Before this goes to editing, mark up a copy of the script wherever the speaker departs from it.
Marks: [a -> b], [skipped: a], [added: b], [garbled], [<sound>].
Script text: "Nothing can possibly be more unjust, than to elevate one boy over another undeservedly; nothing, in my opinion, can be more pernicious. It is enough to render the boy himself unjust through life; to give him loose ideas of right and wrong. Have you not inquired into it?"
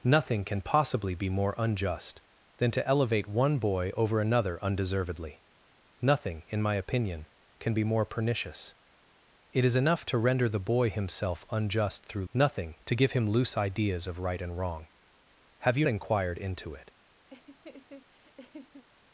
"Nothing can possibly be more unjust, than to elevate one boy over another undeservedly; nothing, in my opinion, can be more pernicious. It is enough to render the boy himself unjust through [life; -> nothing] to give him loose ideas of right and wrong. Have you [skipped: not] inquired into it?" [laugh]